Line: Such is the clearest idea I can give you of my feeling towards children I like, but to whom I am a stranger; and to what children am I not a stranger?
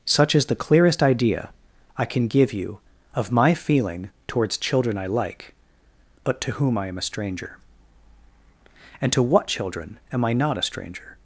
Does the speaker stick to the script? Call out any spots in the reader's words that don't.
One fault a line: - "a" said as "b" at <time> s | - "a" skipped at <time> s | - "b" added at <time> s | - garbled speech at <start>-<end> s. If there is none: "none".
none